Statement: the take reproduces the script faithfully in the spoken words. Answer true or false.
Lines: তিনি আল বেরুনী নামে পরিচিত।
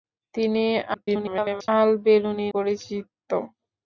false